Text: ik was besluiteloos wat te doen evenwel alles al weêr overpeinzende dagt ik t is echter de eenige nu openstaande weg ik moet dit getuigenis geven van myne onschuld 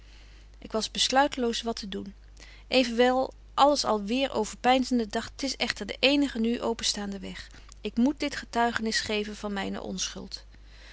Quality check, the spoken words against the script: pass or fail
fail